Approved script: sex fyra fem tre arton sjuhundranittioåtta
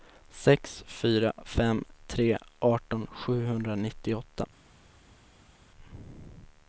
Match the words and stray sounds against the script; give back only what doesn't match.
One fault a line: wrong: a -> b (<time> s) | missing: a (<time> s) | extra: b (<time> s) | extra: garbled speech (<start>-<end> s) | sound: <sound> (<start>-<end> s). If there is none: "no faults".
no faults